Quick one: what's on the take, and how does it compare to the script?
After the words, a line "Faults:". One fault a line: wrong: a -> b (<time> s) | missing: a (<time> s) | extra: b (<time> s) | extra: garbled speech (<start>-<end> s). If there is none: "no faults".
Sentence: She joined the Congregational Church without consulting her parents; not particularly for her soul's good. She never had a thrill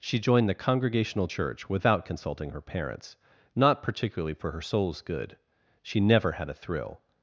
She joined the Congregational Church without consulting her parents; not particularly for her soul's good. She never had a thrill
Faults:
no faults